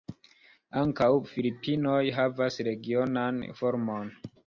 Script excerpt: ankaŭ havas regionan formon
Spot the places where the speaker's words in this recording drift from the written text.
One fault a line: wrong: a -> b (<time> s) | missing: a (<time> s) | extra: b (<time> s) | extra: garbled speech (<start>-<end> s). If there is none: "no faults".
extra: filipinoj (1.4 s)